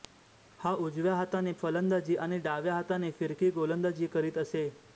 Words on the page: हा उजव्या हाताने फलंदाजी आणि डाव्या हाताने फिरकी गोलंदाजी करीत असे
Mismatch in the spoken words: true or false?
false